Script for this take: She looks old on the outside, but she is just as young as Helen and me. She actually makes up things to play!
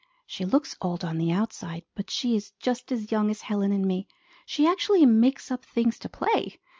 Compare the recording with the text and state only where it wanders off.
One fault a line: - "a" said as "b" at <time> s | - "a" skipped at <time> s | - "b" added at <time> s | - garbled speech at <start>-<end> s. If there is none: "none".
none